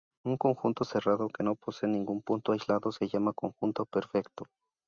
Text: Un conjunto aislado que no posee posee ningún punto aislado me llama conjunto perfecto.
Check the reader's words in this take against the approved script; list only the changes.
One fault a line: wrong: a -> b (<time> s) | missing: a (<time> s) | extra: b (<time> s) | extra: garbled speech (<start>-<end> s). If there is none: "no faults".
wrong: aislado -> cerrado (0.8 s)
missing: posee (1.9 s)
wrong: me -> se (2.9 s)